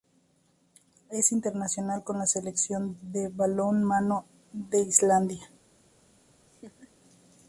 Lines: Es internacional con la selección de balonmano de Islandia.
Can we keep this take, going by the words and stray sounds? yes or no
no